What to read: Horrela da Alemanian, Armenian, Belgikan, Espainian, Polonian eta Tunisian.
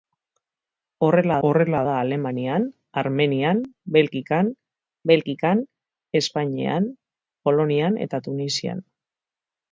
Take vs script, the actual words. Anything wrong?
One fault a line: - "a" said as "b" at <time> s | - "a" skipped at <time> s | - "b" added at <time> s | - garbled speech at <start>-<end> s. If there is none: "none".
- "horrela" added at 1.5 s
- "Belgikan" added at 5.1 s